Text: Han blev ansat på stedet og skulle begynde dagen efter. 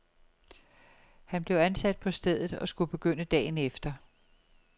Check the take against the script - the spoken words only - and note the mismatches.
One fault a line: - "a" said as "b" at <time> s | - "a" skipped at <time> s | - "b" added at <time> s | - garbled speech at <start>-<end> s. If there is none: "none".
none